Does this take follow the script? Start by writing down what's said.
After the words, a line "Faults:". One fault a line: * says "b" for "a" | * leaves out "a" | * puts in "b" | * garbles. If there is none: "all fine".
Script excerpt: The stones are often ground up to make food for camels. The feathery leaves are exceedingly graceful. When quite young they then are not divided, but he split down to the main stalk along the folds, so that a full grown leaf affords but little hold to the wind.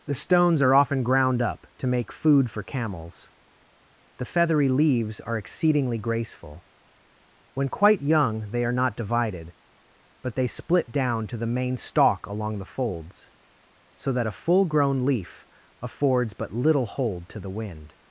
The stones are often ground up to make food for camels. The feathery leaves are exceedingly graceful. When quite young they are not divided, but they split down to the main stalk along the folds, so that a full grown leaf affords but little hold to the wind.
Faults:
* leaves out "then"
* says "they" for "he"